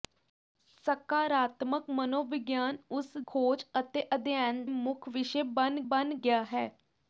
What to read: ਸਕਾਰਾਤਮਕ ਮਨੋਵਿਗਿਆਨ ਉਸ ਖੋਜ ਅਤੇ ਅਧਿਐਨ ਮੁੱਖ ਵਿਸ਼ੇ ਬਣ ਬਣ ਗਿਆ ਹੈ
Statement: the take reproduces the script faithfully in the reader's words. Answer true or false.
true